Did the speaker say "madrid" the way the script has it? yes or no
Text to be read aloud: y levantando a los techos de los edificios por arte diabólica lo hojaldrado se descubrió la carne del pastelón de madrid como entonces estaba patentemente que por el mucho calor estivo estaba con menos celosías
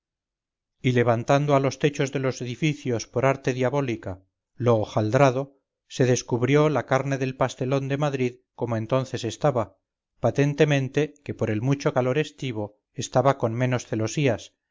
yes